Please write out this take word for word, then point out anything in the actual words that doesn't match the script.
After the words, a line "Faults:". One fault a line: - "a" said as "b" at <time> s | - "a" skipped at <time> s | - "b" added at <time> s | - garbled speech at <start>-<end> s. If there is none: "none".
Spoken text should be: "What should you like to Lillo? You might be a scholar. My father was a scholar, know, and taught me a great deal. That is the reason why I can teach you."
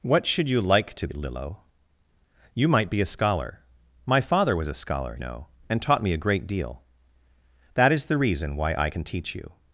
"What should you like to Lillo? You might be a scholar. My father was a scholar, know, and taught me a great deal. That is the reason why I can teach you."
Faults:
none